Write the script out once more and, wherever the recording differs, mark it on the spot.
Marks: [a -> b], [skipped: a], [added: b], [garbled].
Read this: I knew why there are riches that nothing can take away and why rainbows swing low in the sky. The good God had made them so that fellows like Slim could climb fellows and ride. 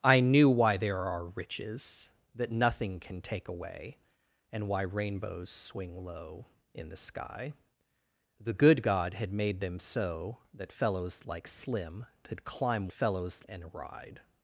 I knew why there are riches that nothing can take away and why rainbows swing low in the sky. The good God had made them so that fellows like Slim could climb fellows and ride.